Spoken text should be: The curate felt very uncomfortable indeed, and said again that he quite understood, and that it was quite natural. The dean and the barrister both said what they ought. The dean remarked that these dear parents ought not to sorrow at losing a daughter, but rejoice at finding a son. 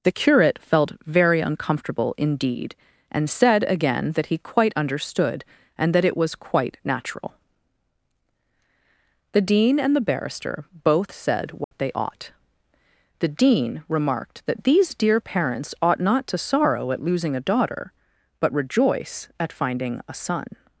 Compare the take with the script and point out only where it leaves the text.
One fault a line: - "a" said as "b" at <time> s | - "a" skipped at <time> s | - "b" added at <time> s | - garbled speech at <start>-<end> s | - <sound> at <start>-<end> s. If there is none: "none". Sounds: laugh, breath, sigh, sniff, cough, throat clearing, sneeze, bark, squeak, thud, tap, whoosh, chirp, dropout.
- dropout at 11.6-11.7 s